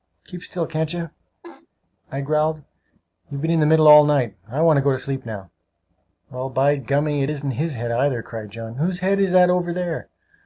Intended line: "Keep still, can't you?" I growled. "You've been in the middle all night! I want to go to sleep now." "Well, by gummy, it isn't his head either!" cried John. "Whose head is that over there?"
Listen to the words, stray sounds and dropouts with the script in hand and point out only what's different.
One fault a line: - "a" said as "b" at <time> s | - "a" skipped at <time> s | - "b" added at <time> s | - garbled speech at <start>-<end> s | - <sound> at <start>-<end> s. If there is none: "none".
- laugh at 1.4-1.7 s